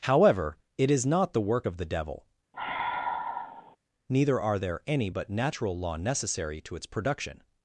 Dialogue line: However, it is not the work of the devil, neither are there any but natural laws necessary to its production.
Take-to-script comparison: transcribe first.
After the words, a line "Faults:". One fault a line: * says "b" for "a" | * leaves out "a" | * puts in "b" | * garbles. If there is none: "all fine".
However, it is not the work of the devil, neither are there any but natural law necessary to its production.
Faults:
* says "law" for "laws"